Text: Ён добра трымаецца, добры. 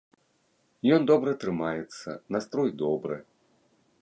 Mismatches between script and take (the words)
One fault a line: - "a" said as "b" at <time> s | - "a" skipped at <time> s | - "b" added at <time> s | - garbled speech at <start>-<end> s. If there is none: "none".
- "настрой" added at 2.4 s